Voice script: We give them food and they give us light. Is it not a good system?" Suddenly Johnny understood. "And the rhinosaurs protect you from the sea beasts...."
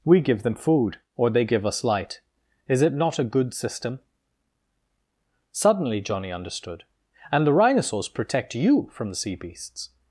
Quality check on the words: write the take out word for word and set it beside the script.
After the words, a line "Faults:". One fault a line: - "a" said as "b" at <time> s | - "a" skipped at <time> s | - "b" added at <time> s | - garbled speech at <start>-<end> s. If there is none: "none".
We give them food or they give us light. Is it not a good system?" Suddenly Johnny understood. "And the rhinosaurs protect you from the sea beasts...."
Faults:
- "and" said as "or" at 1.1 s